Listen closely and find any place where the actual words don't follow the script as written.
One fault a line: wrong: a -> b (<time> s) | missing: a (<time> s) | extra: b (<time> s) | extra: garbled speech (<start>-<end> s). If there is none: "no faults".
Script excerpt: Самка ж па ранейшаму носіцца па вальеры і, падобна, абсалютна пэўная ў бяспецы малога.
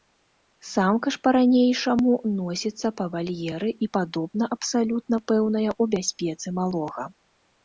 no faults